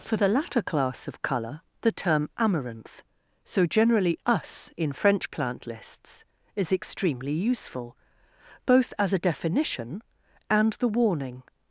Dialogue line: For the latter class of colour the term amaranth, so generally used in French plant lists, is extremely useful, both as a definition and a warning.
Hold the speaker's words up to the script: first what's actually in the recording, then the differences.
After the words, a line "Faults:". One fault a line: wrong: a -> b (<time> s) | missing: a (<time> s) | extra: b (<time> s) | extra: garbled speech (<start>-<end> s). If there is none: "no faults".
For the latter class of colour the term amaranth, so generally us in French plant lists, is extremely useful, both as a definition and the warning.
Faults:
wrong: used -> us (4.2 s)
wrong: a -> the (10.7 s)